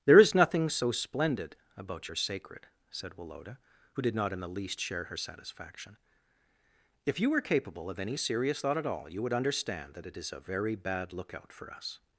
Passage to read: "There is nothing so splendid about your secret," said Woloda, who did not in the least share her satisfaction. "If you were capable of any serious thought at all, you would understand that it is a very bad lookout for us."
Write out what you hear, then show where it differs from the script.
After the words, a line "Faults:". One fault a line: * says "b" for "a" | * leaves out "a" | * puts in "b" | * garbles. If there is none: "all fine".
"There is nothing so splendid about your sacred," said Woloda, who did not in the least share her satisfaction. "If you were capable of any serious thought at all, you would understand that it is a very bad lookout for us."
Faults:
* says "sacred" for "secret"